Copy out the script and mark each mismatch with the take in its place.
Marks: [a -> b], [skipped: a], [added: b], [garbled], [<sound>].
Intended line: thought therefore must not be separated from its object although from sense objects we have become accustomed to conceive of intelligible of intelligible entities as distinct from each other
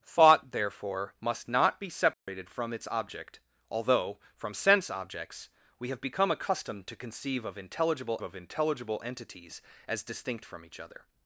thought therefore must not be separated [dropout] from its object although from sense objects we have become accustomed to conceive of intelligible of intelligible entities as distinct from each other